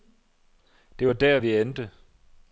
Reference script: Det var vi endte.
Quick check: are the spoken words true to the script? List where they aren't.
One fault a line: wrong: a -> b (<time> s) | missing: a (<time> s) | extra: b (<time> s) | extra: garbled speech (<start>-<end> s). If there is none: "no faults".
extra: der (1.1 s)